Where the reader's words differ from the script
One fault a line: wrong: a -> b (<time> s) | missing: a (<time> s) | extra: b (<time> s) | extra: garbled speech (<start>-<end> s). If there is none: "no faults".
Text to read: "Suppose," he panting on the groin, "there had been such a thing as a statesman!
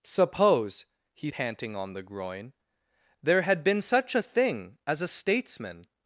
no faults